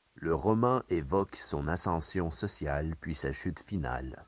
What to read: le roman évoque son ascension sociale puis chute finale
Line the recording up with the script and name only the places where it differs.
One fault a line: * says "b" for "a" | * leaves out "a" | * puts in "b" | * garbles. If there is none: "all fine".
* puts in "sa"